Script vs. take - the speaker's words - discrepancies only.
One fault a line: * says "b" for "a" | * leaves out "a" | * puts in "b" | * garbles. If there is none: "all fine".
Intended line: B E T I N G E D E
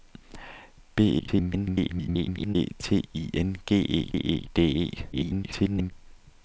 * garbles
* puts in "E"
* garbles